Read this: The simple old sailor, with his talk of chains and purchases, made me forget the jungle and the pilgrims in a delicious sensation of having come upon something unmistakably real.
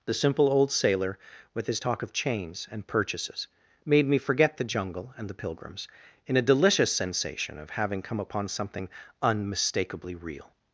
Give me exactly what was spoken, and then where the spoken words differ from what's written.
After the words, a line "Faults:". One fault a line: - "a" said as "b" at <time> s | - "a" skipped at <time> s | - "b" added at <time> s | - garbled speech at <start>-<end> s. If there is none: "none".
The simple old sailor, with his talk of chains and purchases, made me forget the jungle and the pilgrims in a delicious sensation of having come upon something unmistakably real.
Faults:
none